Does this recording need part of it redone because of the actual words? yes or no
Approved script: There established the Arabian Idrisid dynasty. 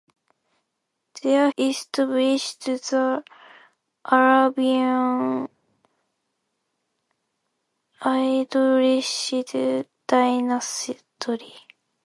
no